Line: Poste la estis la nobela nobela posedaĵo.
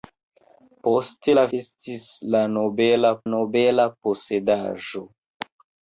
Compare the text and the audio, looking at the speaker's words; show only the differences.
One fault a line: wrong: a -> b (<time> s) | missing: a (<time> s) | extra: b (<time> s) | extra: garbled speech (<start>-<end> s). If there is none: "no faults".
no faults